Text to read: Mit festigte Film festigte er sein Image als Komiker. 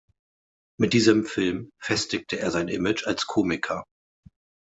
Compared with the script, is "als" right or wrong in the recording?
right